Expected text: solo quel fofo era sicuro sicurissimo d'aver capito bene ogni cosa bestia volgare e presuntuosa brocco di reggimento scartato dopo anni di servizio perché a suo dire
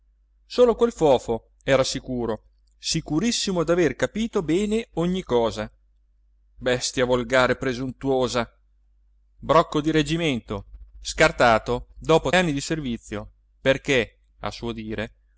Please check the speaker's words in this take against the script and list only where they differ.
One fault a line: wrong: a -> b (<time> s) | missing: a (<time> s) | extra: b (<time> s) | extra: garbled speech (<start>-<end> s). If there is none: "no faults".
no faults